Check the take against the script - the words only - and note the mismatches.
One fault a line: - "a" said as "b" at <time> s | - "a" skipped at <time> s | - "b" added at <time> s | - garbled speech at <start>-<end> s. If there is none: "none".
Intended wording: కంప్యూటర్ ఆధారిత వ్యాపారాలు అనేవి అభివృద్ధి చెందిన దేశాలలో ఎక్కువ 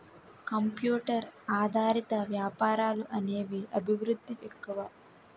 - "చెందిన దేశాలలో" skipped at 4.4 s